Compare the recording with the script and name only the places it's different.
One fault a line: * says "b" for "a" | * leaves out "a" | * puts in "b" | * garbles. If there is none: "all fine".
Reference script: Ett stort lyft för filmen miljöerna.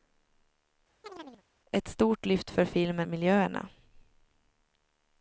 all fine